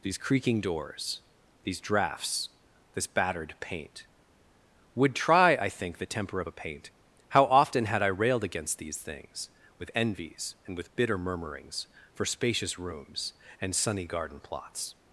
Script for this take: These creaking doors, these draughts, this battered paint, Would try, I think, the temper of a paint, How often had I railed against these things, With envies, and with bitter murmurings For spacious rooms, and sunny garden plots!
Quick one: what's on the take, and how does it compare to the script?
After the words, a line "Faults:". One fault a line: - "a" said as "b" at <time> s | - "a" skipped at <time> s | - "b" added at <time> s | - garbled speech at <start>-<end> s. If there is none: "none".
These creaking doors, these draughts, this battered paint, Would try, I think, the temper of a paint, How often had I railed against these things, With envies, and with bitter murmurings For spacious rooms, and sunny garden plots!
Faults:
none